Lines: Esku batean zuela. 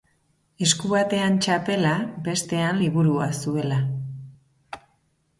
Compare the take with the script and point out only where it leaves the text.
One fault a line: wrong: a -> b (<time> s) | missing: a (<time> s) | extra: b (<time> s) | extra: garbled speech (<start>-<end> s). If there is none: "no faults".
extra: txapela bestean liburua (1.4 s)